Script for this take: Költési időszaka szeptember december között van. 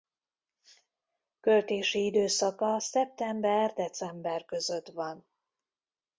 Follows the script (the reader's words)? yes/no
yes